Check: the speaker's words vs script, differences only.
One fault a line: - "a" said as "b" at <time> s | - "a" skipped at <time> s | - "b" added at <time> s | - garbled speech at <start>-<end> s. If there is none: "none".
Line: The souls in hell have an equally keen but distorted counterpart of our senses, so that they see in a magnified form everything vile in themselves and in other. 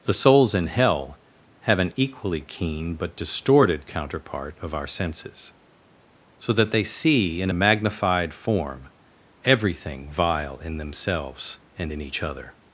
- "each" added at 12.0 s